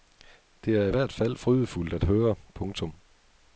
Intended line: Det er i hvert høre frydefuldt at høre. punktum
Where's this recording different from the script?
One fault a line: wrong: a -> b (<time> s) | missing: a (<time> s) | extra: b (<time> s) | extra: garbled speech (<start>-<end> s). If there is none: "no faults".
wrong: høre -> fald (1.1 s)